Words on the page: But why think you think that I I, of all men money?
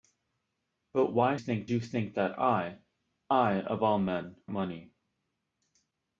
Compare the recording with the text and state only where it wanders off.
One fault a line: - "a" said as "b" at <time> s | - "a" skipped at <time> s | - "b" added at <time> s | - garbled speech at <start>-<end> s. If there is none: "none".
none